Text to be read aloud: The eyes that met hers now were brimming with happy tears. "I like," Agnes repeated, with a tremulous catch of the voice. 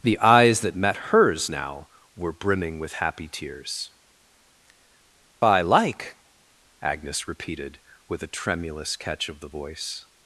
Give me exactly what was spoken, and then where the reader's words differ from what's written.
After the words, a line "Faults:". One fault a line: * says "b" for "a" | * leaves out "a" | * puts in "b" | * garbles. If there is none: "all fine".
The eyes that met hers now were brimming with happy tears. "I like," Agnes repeated, with a tremulous catch of the voice.
Faults:
all fine